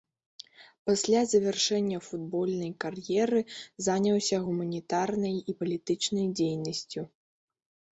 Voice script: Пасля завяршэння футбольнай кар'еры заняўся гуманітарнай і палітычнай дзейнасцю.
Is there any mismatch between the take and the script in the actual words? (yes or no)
no